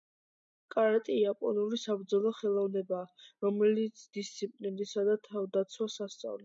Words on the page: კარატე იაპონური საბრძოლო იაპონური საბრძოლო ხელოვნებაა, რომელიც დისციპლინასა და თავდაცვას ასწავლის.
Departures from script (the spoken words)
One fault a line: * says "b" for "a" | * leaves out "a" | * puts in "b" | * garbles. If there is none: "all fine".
* leaves out "იაპონური საბრძოლო"